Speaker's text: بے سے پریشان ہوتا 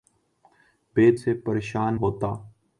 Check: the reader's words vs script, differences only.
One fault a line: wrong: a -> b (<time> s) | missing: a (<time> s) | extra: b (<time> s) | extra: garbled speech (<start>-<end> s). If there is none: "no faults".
no faults